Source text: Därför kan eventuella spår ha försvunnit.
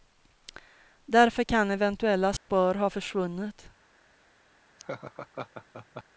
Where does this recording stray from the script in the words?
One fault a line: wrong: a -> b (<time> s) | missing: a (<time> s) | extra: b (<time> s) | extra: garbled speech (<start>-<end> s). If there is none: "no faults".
no faults